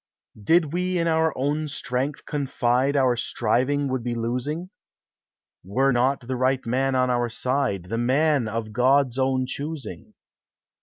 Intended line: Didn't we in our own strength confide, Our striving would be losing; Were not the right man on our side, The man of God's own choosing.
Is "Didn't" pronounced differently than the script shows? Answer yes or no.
yes